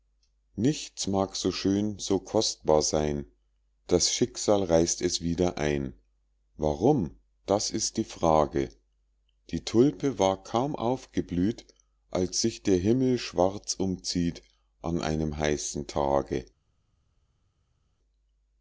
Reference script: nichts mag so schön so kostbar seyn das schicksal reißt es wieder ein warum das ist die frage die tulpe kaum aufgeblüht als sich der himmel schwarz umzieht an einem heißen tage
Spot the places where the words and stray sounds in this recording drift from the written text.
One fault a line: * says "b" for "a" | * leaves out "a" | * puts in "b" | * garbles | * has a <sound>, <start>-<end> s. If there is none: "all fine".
* puts in "war"